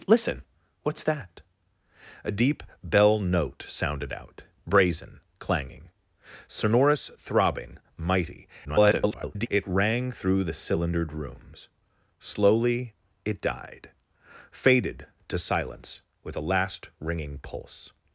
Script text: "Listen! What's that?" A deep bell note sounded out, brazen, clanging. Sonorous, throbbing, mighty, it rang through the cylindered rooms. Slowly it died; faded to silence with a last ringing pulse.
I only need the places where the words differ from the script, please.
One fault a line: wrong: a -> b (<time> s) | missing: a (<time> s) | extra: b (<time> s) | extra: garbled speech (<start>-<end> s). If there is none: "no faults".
extra: garbled speech (8.6-9.5 s)